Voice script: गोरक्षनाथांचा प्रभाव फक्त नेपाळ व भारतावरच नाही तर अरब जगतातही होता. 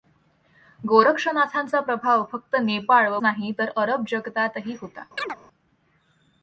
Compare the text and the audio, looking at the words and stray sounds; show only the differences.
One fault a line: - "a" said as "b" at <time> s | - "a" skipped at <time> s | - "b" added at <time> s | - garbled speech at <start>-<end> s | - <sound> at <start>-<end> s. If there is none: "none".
- "भारतावरच" skipped at 3.2 s
- chirp at 5.2-5.4 s